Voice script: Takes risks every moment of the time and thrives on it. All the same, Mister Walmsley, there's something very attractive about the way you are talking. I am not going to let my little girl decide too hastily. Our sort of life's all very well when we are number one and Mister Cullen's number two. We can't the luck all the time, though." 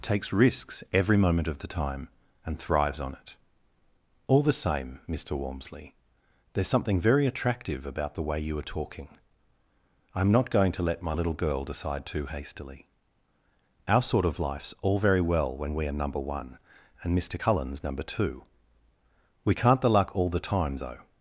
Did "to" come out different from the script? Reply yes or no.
no